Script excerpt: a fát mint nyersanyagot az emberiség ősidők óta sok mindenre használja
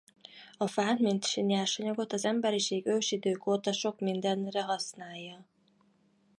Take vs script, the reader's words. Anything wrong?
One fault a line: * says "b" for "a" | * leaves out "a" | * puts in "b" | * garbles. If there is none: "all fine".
all fine